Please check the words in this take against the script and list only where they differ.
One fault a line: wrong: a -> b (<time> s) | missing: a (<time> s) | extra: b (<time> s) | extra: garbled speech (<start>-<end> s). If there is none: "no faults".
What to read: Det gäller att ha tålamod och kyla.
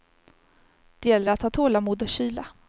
no faults